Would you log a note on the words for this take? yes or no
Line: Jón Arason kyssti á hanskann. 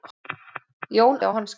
yes